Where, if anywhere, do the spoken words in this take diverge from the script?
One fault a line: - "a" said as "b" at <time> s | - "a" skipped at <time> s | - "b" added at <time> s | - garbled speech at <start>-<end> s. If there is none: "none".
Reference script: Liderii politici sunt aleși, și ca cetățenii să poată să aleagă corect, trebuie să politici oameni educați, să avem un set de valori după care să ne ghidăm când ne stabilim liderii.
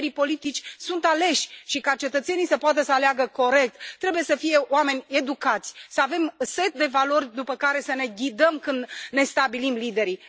- "politici" said as "fie" at 4.3 s